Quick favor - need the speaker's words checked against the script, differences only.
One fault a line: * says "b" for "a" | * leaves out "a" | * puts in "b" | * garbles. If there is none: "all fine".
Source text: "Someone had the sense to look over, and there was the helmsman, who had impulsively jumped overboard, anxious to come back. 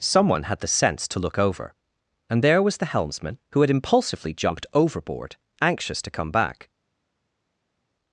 all fine